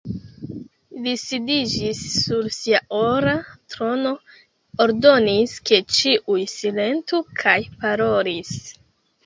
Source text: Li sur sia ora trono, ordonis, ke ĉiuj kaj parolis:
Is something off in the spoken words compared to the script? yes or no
yes